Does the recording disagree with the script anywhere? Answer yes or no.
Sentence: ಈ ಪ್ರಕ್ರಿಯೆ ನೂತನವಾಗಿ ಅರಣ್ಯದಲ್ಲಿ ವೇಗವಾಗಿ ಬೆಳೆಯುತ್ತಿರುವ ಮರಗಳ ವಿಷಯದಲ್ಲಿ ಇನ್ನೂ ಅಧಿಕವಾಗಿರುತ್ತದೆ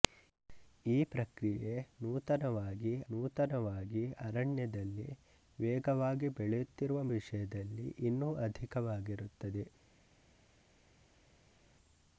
yes